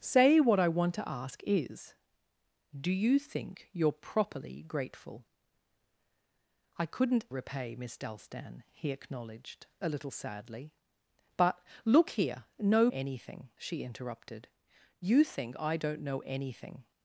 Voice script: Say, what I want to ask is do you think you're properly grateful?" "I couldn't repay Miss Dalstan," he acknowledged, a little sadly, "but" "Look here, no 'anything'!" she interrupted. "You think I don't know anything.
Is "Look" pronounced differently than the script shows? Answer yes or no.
no